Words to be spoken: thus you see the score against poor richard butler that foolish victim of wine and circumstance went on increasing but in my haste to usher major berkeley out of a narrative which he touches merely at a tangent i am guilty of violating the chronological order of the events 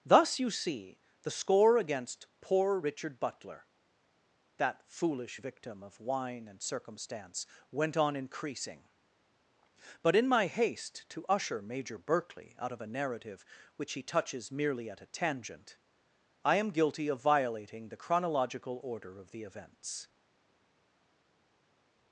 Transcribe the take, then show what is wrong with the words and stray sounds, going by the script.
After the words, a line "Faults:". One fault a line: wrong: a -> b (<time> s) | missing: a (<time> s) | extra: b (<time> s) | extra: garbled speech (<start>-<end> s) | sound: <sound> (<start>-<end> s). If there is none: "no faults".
thus you see the score against poor richard butler that foolish victim of wine and circumstance went on increasing but in my haste to usher major berkeley out of a narrative which he touches merely at a tangent i am guilty of violating the chronological order of the events
Faults:
no faults